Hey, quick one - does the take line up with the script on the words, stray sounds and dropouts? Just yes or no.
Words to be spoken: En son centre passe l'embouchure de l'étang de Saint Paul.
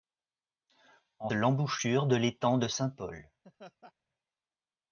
no